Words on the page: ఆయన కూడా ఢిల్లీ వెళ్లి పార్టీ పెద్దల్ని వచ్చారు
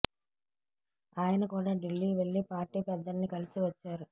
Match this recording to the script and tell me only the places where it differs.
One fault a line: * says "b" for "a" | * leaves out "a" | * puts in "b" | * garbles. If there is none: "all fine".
* puts in "కలిసి"